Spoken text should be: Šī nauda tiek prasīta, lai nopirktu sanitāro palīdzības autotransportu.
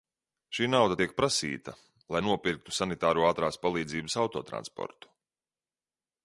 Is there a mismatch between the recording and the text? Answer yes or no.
yes